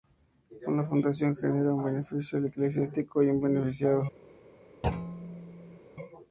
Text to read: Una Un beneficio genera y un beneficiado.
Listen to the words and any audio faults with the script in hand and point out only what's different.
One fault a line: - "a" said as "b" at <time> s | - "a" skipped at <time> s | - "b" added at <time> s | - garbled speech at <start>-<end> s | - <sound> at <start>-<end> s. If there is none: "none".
- "Fundación genera" added at 0.8 s
- "genera" said as "eclesiástico" at 2.4 s
- thud at 4.8-5.8 s